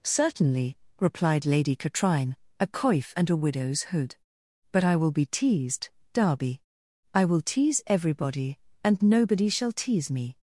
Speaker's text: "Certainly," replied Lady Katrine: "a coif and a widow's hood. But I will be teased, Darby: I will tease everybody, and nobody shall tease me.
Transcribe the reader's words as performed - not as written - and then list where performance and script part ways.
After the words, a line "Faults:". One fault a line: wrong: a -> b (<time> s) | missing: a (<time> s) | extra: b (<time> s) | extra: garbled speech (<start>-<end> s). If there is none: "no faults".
"Certainly," replied Lady Katrine: "a coif and a widow's hood. But I will be teased, Darby: I will tease everybody, and nobody shall tease me.
Faults:
no faults